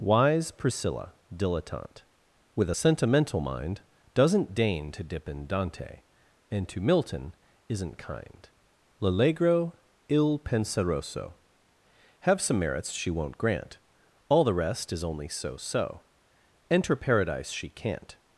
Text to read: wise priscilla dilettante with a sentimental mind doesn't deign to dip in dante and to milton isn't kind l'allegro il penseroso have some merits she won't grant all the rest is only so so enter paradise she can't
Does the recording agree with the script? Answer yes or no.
yes